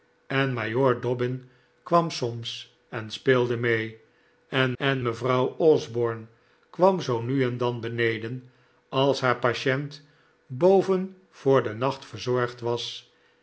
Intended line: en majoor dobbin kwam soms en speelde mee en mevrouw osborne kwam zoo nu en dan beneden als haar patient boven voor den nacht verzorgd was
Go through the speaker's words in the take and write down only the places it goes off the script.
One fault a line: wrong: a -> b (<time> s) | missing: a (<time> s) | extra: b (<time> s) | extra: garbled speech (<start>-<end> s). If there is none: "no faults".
extra: en (4.8 s)